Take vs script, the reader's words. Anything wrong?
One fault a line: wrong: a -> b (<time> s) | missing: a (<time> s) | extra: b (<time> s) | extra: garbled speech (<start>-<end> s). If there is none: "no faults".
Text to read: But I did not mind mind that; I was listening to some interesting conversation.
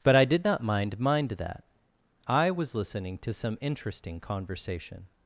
no faults